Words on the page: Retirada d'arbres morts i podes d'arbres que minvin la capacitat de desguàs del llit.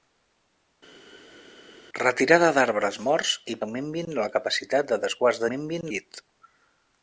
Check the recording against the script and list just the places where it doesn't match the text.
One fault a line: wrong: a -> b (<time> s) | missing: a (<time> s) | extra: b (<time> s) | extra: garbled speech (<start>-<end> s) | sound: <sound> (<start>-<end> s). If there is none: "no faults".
missing: podes d'arbres (3.6 s)
wrong: del -> minvin (5.5 s)